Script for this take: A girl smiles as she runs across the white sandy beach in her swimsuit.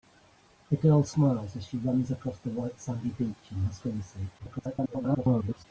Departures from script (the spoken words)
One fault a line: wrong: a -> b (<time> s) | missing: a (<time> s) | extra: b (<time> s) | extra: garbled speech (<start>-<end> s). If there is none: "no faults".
extra: garbled speech (4.4-5.6 s)